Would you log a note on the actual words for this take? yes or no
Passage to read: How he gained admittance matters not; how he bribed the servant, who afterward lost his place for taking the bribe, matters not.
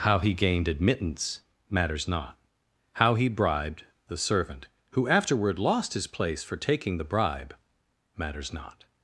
no